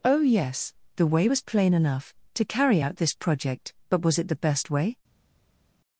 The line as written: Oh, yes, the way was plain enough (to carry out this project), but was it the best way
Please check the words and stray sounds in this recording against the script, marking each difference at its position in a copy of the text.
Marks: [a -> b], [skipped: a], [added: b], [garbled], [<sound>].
Oh, yes, the way was plain enough (to carry out this project), but was it the best way